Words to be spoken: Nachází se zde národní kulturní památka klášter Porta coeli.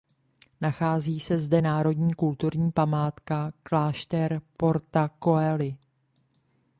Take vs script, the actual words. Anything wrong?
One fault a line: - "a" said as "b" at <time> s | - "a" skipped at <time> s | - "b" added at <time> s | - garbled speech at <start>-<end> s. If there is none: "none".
none